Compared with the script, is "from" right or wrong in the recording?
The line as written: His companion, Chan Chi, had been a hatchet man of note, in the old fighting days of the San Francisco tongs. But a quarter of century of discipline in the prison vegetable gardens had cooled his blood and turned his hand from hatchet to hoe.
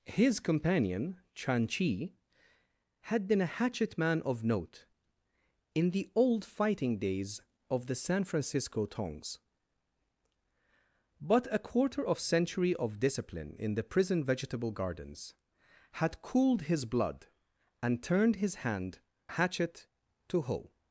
wrong